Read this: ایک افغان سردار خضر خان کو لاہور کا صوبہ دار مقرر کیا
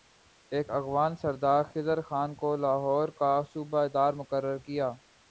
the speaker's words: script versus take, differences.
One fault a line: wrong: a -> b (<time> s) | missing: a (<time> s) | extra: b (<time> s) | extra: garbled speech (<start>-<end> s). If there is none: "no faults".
no faults